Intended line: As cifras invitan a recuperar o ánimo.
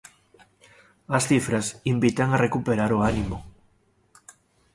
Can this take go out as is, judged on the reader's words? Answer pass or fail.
pass